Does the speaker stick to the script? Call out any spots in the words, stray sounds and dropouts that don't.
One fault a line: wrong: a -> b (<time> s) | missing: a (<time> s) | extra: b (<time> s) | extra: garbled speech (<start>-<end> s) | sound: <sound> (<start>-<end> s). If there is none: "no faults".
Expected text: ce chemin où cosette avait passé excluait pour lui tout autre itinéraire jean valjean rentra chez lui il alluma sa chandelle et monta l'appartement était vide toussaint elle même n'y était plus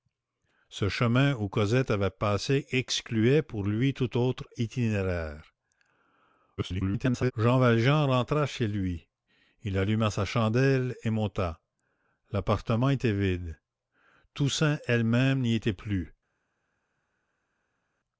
extra: garbled speech (6.6-7.3 s)